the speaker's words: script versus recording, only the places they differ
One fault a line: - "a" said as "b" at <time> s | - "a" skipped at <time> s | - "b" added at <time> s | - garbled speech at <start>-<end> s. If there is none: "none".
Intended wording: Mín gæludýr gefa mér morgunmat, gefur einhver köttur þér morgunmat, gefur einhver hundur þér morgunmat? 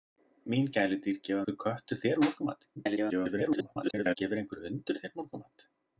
- "mér morgunmat gefur" skipped at 1.4 s
- garbled speech at 2.8-4.2 s